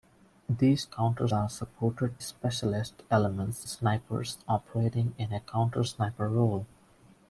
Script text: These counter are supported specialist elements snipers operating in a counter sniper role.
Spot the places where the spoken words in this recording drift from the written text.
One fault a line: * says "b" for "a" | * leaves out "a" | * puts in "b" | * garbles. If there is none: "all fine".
all fine